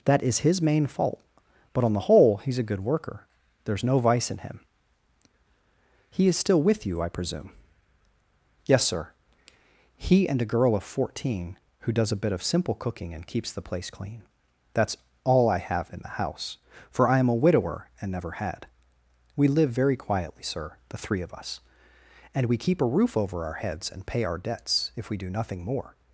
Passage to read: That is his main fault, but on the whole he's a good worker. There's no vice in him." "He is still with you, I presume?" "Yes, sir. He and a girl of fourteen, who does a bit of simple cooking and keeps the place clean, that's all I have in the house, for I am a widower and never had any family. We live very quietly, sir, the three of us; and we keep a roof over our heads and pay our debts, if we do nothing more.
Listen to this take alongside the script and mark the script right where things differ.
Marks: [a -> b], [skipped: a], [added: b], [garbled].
That is his main fault, but on the whole he's a good worker. There's no vice in him." "He is still with you, I presume?" "Yes, sir. He and a girl of fourteen, who does a bit of simple cooking and keeps the place clean, that's all I have in the house, for I am a widower and never had [skipped: any family.] We live very quietly, sir, the three of us; and we keep a roof over our heads and pay our debts, if we do nothing more.